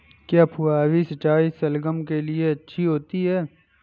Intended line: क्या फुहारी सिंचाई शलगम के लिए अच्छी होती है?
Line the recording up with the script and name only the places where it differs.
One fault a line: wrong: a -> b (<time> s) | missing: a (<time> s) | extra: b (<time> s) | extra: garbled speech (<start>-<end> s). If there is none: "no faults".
no faults